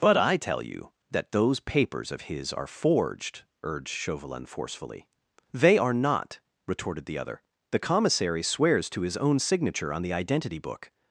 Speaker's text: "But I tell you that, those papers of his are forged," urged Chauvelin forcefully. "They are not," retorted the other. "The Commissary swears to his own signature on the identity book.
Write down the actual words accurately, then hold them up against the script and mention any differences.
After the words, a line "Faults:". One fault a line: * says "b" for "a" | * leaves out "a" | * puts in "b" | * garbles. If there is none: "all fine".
"But I tell you that, those papers of his are forged," urged Chauvelin forcefully. "They are not," retorted the other. "The Commissary swears to his own signature on the identity book.
Faults:
all fine